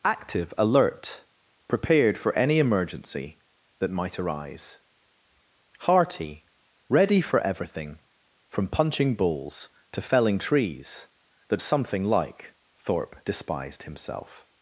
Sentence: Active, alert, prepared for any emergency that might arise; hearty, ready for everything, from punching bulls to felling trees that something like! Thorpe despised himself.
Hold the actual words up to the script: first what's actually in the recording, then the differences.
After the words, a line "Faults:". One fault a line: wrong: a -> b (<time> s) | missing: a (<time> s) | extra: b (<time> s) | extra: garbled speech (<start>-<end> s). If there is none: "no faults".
Active, alert, prepared for any emergency that might arise; hearty, ready for everything, from punching bulls to felling trees that something like! Thorpe despised himself.
Faults:
no faults